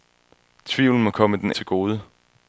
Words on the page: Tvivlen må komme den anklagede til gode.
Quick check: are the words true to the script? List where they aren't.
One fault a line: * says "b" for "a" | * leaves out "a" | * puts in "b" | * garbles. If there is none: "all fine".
* leaves out "anklagede"